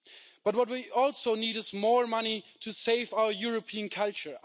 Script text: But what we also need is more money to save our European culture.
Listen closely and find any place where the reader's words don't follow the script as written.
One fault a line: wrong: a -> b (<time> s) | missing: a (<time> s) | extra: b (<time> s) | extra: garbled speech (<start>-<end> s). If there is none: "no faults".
no faults